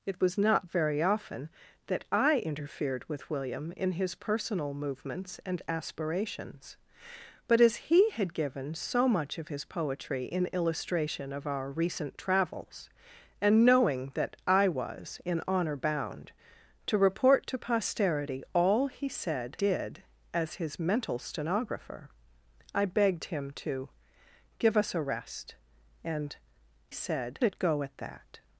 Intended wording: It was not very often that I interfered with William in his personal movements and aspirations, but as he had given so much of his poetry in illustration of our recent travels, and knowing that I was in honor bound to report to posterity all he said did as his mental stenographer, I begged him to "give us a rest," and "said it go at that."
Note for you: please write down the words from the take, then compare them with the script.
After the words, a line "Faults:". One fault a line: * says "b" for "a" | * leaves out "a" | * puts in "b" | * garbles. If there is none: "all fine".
It was not very often that I interfered with William in his personal movements and aspirations, but as he had given so much of his poetry in illustration of our recent travels, and knowing that I was in honor bound to report to posterity all he said did as his mental stenographer, I begged him to "give us a rest," and "said it go at that."
Faults:
all fine